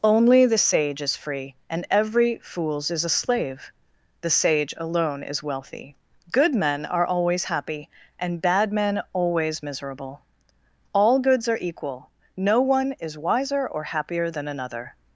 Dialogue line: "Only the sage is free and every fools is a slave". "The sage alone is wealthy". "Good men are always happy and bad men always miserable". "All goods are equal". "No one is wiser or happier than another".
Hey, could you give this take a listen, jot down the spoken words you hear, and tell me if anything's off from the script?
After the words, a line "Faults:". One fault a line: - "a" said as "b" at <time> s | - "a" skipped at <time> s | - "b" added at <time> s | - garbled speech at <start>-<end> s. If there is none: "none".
"Only the sage is free and every fools is a slave". "The sage alone is wealthy". "Good men are always happy and bad men always miserable". "All goods are equal". "No one is wiser or happier than another".
Faults:
none